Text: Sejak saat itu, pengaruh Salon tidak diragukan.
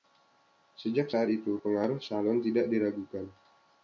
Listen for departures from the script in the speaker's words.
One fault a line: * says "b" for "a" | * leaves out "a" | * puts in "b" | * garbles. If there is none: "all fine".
all fine